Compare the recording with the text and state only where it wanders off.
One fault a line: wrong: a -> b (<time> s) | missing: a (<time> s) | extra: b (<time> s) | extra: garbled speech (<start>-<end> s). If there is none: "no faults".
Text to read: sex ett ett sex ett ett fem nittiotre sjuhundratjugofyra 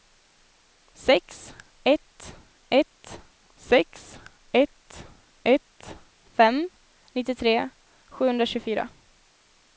no faults